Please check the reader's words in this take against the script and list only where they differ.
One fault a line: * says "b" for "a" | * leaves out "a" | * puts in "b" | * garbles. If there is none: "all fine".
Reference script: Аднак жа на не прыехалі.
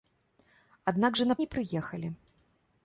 all fine